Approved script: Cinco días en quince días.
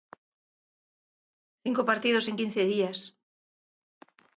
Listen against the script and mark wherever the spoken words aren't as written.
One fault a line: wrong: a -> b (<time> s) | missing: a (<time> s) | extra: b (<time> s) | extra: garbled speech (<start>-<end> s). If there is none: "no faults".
wrong: días -> partidos (1.9 s)